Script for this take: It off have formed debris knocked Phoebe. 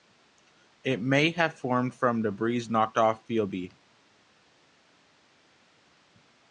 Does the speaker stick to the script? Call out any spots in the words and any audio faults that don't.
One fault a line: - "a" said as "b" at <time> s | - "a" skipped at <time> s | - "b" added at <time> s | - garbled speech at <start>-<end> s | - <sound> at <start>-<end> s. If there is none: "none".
- "off" said as "may" at 1.0 s
- "from" added at 1.9 s
- "off" added at 3.0 s